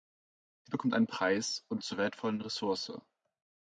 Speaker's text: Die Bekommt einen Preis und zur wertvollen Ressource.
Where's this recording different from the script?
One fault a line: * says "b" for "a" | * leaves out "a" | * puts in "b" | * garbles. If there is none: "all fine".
all fine